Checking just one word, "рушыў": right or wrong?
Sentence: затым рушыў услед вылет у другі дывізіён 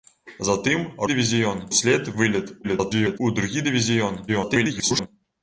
wrong